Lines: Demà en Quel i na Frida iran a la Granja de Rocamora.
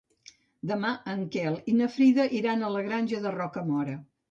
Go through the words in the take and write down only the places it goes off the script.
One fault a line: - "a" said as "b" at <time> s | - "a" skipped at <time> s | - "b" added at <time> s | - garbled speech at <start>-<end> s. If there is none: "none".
none